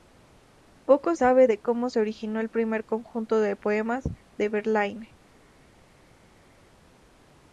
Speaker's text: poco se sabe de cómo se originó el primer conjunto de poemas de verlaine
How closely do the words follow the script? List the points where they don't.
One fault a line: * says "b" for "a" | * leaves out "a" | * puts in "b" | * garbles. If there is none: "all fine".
* leaves out "se"